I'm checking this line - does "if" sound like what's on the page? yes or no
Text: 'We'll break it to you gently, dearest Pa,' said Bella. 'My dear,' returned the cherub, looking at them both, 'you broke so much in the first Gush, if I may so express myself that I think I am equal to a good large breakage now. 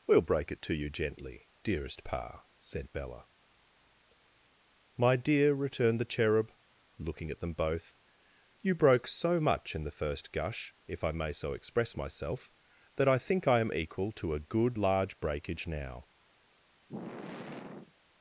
yes